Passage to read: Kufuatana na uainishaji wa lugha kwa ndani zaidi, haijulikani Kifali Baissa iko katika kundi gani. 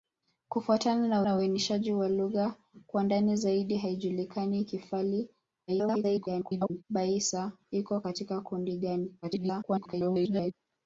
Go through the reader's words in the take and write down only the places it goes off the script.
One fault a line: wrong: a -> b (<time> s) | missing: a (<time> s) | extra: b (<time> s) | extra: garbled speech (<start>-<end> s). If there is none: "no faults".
extra: na (1.2 s)
extra: garbled speech (5.7-6.8 s)
extra: garbled speech (9.2-10.5 s)